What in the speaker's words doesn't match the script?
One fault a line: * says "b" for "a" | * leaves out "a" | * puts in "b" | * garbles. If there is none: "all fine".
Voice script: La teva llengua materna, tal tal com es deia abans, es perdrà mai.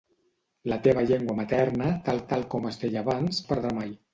all fine